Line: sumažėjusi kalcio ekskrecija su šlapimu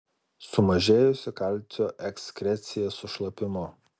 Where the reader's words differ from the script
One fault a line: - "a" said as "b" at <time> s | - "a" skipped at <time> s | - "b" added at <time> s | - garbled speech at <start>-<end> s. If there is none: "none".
none